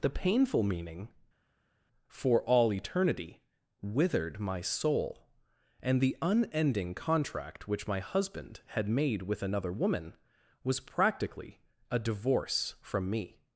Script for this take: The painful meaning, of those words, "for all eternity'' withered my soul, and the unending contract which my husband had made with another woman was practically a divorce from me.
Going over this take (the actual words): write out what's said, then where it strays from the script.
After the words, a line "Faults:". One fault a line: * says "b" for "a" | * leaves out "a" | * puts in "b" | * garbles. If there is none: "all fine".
The painful meaning, "for all eternity'' withered my soul, and the unending contract which my husband had made with another woman was practically a divorce from me.
Faults:
* leaves out "of those words"